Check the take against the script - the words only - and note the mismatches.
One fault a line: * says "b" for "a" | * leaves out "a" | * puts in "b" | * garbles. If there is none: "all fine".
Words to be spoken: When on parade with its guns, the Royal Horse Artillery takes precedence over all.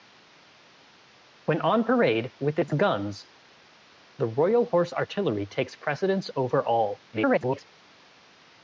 * garbles